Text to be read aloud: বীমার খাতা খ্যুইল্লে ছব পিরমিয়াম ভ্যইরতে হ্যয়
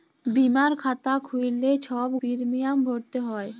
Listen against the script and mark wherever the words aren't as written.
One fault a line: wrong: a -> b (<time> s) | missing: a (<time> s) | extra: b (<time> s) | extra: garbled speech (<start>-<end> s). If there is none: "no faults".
no faults